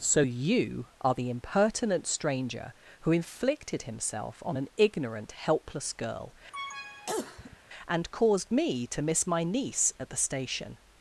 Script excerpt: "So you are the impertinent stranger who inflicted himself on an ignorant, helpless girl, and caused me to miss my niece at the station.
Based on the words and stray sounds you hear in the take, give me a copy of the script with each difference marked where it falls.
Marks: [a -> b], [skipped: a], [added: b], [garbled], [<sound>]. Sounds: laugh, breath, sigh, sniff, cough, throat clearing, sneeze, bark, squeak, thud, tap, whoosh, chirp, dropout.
"So you are the impertinent stranger who inflicted himself on an ignorant, helpless girl, [cough] and caused me to miss my niece at the station.